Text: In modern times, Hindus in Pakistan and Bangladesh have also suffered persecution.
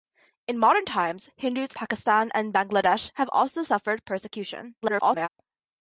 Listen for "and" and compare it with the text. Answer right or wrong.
right